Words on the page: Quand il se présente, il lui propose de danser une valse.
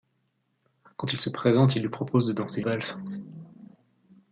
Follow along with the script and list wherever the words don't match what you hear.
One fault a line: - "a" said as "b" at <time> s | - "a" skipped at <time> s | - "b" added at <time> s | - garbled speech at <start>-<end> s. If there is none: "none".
- "une" skipped at 2.6 s